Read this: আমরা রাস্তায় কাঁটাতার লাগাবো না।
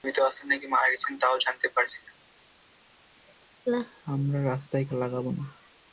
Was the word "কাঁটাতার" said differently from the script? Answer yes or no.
yes